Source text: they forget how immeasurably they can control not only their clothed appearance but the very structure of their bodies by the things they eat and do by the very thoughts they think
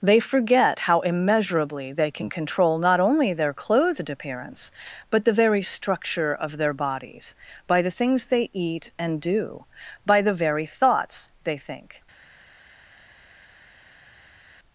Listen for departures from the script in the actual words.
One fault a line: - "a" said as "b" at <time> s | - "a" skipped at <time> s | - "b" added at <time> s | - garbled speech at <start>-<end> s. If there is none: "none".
none